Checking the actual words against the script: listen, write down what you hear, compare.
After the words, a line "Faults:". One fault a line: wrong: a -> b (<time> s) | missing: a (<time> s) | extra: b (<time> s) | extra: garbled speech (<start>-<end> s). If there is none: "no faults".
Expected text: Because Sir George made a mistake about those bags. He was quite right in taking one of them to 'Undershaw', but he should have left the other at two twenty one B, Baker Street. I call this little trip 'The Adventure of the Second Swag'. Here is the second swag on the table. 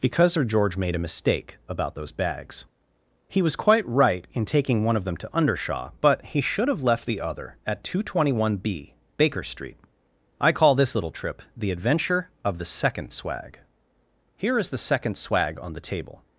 Because Sir George made a mistake about those bags. He was quite right in taking one of them to 'Undershaw', but he should have left the other at two twenty one B, Baker Street. I call this little trip 'The Adventure of the Second Swag'. Here is the second swag on the table.
Faults:
no faults